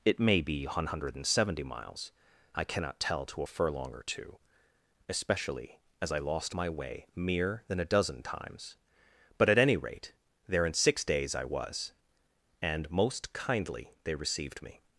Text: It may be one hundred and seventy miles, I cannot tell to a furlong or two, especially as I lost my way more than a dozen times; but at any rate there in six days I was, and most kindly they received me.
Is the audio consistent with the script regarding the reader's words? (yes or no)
no